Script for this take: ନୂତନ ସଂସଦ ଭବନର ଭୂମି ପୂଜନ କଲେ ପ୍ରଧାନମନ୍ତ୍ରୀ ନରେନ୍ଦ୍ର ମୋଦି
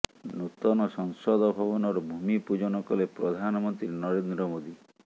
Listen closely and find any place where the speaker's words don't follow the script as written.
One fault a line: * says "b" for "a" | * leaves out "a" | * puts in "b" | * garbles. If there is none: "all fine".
all fine